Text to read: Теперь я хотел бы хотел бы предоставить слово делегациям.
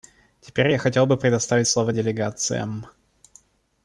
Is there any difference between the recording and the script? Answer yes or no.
yes